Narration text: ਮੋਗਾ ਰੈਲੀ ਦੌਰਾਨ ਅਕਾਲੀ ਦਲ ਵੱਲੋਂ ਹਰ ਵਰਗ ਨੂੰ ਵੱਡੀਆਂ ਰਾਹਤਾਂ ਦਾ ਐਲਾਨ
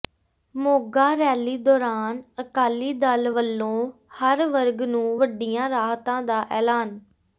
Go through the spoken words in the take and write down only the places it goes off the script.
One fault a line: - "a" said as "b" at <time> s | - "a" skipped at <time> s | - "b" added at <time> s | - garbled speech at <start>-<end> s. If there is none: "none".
none